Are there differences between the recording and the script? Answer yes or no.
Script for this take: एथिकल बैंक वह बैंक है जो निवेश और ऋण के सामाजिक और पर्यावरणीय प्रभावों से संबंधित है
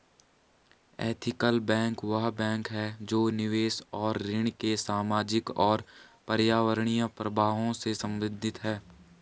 no